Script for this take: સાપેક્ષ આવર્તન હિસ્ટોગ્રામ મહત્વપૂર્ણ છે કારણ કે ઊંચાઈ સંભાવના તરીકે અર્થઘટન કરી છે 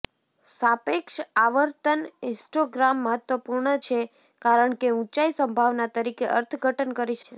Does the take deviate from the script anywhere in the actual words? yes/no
no